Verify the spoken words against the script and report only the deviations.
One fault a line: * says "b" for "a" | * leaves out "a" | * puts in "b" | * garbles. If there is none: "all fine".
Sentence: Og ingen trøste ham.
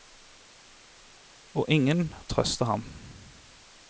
all fine